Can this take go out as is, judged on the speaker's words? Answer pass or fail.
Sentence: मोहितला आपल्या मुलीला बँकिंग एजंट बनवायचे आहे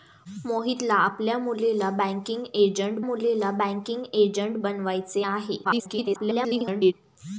fail